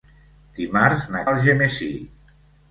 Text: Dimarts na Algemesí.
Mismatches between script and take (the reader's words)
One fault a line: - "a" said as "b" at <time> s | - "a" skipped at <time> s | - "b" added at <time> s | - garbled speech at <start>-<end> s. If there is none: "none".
none